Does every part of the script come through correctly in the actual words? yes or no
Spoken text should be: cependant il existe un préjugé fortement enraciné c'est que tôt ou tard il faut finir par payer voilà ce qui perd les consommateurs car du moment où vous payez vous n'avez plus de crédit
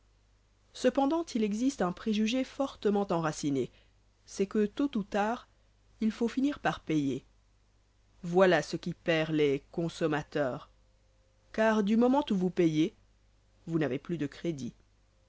yes